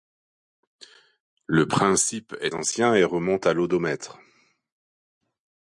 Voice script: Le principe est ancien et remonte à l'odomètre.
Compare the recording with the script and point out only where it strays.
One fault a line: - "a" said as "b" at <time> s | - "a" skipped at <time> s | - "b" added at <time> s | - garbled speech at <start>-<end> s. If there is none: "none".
none